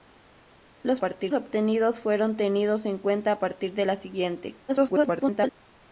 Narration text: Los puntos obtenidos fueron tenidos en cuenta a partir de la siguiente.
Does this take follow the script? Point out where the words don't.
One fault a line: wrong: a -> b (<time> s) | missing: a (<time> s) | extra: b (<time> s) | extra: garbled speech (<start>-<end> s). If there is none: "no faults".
wrong: puntos -> partir (1.0 s)
extra: garbled speech (4.7-5.5 s)